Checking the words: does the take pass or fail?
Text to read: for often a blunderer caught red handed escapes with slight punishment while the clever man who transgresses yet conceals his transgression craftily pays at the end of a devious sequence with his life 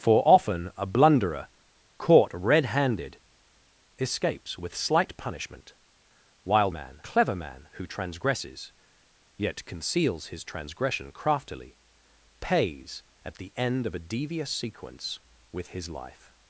fail